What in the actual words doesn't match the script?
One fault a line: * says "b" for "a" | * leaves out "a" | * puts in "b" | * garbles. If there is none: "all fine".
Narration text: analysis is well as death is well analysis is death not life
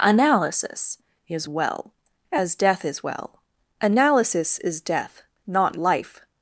all fine